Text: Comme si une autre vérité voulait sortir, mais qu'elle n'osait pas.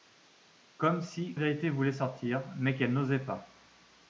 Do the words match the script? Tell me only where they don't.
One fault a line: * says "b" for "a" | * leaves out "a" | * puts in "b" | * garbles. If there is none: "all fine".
* leaves out "une autre"